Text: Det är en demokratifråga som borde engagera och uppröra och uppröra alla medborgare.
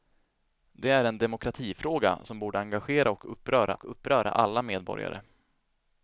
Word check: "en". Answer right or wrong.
right